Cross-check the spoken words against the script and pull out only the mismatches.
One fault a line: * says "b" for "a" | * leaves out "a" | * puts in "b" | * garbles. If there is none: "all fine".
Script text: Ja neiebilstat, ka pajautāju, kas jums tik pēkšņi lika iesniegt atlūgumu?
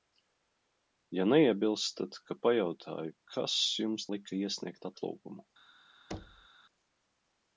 * leaves out "tik pēkšņi"